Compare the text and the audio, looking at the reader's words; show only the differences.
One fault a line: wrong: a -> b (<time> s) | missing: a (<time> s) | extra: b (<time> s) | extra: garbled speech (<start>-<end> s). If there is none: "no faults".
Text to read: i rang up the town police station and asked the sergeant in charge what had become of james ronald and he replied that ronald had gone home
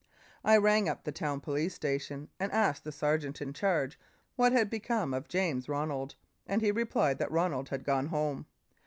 no faults